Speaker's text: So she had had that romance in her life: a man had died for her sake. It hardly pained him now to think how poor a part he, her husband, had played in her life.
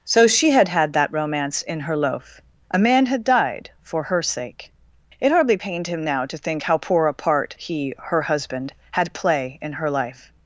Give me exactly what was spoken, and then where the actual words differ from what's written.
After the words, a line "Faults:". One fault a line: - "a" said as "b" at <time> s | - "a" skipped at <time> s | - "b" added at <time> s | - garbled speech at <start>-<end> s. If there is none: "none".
So she had had that romance in her loaf: a man had died for her sake. It hardly pained him now to think how poor a part he, her husband, had play in her life.
Faults:
- "life" said as "loaf" at 1.9 s
- "played" said as "play" at 9.1 s